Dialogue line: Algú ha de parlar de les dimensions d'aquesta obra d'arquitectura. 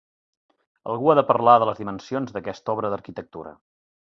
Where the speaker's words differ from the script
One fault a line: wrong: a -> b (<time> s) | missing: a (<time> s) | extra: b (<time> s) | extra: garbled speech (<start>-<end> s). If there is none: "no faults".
no faults